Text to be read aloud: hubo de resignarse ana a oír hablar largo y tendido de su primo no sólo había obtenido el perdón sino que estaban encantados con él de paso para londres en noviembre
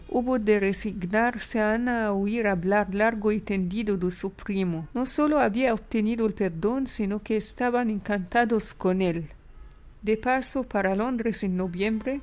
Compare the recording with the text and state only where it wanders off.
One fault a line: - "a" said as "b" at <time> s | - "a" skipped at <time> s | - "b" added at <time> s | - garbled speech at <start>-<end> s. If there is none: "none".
none